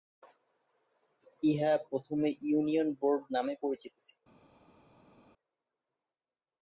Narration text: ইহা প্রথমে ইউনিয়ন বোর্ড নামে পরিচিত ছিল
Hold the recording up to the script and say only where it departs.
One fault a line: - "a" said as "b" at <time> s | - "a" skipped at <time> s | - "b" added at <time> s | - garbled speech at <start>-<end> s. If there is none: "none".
none